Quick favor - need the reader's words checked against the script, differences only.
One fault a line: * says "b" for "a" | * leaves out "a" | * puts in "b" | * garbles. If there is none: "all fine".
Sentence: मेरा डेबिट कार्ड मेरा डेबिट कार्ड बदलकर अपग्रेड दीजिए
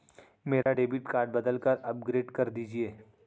* leaves out "मेरा डेबिट कार्ड"
* puts in "कर"